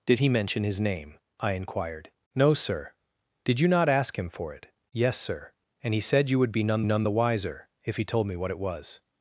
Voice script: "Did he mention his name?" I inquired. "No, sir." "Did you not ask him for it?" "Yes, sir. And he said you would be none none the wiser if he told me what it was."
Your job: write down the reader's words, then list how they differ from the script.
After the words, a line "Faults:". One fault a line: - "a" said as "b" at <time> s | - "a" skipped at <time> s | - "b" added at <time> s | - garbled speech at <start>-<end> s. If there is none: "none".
"Did he mention his name?" I inquired. "No, sir." "Did you not ask him for it?" "Yes, sir. And he said you would be none none the wiser if he told me what it was."
Faults:
none